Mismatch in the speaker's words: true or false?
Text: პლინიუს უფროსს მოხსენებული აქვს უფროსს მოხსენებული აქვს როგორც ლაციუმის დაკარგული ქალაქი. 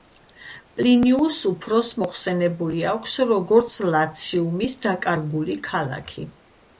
true